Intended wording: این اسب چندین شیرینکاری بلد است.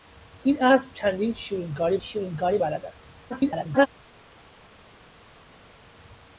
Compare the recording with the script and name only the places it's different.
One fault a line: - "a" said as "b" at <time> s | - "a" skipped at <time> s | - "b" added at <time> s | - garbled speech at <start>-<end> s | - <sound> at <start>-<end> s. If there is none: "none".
- "شیرینکاری" added at 2.0 s
- garbled speech at 3.3-3.9 s